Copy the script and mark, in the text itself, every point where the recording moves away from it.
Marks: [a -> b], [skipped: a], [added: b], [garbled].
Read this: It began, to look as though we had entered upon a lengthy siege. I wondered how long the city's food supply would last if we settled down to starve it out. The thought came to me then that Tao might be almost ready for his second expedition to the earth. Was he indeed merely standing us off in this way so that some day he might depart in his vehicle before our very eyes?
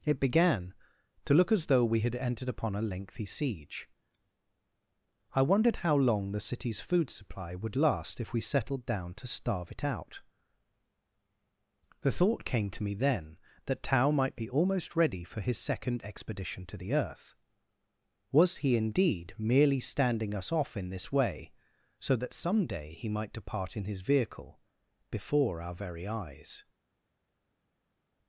It began, to look as though we had entered upon a lengthy siege. I wondered how long the city's food supply would last if we settled down to starve it out. The thought came to me then that Tao might be almost ready for his second expedition to the earth. Was he indeed merely standing us off in this way so that some day he might depart in his vehicle before our very eyes?